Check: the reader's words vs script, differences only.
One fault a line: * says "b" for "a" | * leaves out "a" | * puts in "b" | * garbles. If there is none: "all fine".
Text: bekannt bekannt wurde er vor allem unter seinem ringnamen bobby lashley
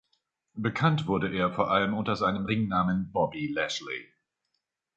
* leaves out "bekannt"